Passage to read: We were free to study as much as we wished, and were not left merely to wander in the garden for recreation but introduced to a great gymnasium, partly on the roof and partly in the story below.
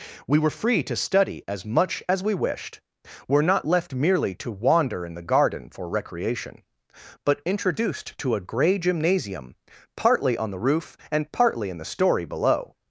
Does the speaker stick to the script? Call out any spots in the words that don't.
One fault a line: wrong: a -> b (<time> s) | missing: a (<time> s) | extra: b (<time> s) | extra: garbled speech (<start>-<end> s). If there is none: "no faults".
missing: and (2.8 s)
wrong: great -> grey (8.4 s)